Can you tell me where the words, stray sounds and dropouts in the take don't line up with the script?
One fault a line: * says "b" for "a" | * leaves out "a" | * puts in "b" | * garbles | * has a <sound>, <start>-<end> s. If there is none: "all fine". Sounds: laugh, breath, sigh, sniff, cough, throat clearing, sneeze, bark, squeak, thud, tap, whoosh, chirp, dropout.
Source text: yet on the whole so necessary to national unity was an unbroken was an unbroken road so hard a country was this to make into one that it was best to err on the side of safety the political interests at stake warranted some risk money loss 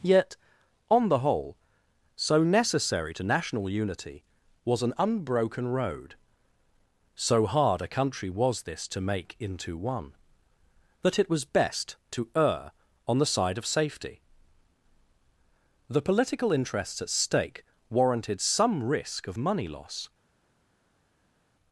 * leaves out "was an unbroken"
* puts in "of"